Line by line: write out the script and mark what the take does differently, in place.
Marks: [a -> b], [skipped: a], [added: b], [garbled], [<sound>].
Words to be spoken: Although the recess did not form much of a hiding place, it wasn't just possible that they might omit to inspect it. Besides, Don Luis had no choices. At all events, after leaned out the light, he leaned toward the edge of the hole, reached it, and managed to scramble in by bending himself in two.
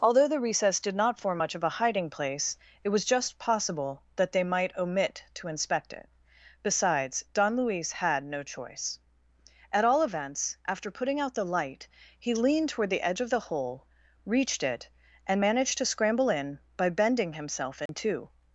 Although the recess did not form much of a hiding place, it [wasn't -> was] just possible that they might omit to inspect it. Besides, Don Luis had no [choices. -> choice] At all events, after [leaned -> putting] out the light, he leaned toward the edge of the hole, reached it, and managed to scramble in by bending himself in [dropout] two.